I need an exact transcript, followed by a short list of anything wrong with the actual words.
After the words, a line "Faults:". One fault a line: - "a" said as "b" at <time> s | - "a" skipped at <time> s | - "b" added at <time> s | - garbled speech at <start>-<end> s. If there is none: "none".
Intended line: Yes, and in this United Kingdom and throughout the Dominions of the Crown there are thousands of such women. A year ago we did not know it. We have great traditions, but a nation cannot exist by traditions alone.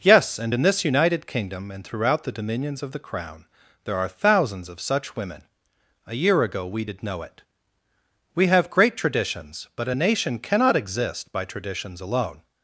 Yes, and in this United Kingdom and throughout the Dominions of the Crown there are thousands of such women. A year ago we did know it. We have great traditions, but a nation cannot exist by traditions alone.
Faults:
- "not" skipped at 7.0 s